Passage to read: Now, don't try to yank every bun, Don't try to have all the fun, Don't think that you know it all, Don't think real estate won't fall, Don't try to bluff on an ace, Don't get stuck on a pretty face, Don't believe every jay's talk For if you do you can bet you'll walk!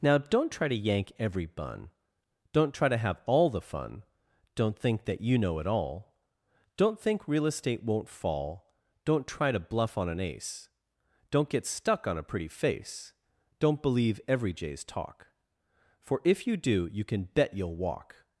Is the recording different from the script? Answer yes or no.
no